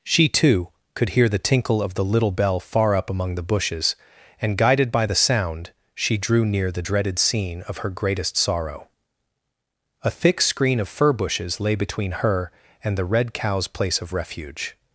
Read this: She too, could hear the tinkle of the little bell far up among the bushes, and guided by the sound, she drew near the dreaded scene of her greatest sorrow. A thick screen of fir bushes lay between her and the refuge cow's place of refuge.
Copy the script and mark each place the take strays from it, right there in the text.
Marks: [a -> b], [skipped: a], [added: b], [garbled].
She too, could hear the tinkle of the little bell far up among the bushes, and guided by the sound, she drew near the dreaded scene of her greatest sorrow. A thick screen of fir bushes lay between her and the [refuge -> red] cow's place of refuge.